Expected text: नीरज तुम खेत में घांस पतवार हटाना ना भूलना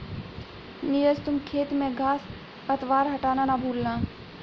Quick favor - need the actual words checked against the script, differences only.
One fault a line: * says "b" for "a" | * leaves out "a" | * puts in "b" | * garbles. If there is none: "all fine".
all fine